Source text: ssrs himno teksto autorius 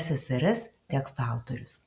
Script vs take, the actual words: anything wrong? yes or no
yes